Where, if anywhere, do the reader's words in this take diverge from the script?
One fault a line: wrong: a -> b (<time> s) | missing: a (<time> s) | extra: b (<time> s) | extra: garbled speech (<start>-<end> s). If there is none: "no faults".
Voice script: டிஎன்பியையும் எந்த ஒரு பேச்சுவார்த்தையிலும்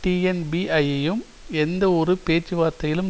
no faults